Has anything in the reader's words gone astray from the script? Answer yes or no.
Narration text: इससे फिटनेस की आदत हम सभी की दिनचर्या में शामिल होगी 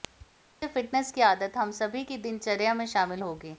no